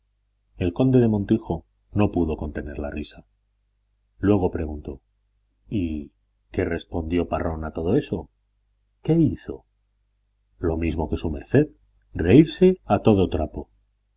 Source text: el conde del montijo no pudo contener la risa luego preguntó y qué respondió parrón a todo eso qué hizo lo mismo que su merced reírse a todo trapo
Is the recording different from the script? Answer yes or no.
no